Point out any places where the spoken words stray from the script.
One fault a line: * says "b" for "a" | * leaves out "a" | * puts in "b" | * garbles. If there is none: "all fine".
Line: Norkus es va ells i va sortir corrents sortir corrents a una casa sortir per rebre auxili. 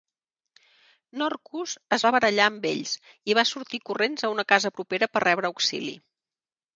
* puts in "barallar amb"
* leaves out "sortir corrents"
* says "propera" for "sortir"